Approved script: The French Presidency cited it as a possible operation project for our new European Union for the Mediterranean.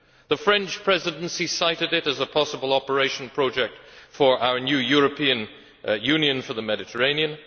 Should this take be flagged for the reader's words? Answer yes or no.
no